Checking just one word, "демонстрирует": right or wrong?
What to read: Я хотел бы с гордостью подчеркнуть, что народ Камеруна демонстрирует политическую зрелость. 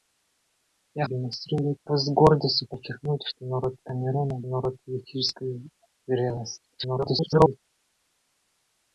wrong